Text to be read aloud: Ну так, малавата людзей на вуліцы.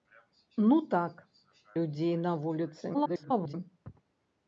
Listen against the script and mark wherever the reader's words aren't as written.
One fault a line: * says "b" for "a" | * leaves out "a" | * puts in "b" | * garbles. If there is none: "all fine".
* leaves out "малавата"
* garbles